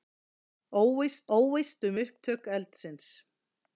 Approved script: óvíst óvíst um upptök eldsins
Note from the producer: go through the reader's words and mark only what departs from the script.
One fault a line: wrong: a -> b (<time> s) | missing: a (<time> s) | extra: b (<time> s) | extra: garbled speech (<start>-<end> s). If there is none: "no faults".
no faults